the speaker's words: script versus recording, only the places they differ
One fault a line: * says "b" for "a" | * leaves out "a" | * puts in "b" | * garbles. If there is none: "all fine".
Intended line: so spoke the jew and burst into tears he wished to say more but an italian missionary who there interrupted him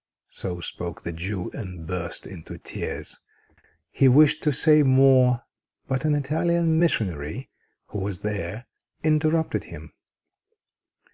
* puts in "was"